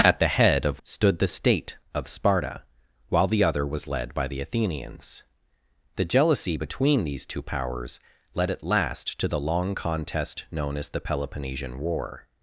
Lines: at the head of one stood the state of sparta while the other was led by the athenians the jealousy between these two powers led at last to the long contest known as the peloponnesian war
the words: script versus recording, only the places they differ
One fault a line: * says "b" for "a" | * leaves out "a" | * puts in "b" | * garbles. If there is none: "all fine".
* leaves out "one"